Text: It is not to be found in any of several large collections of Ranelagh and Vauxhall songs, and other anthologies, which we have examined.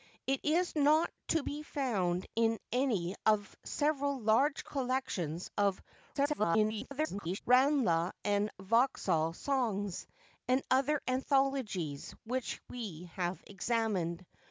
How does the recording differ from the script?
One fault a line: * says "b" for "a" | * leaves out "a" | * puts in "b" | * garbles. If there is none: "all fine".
* garbles